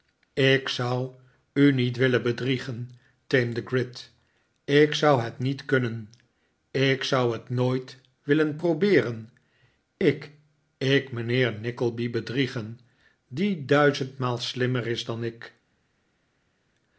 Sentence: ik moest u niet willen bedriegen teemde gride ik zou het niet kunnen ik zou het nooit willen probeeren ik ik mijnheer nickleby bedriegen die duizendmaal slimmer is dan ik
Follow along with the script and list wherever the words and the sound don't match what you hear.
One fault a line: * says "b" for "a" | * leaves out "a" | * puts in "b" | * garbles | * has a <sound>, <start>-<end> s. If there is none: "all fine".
* says "zou" for "moest"